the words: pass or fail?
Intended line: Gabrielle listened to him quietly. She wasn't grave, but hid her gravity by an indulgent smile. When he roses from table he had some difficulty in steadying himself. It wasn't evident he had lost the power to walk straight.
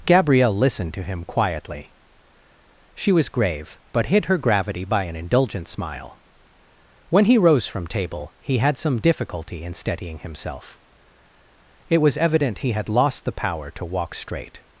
fail